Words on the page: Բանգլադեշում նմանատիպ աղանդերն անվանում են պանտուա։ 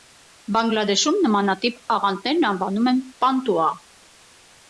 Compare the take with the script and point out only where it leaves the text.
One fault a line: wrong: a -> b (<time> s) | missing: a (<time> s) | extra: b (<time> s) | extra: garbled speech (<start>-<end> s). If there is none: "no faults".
no faults